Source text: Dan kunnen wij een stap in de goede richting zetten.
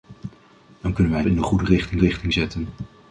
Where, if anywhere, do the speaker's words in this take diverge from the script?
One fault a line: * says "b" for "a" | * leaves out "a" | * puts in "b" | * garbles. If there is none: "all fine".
* leaves out "stap"
* puts in "richting"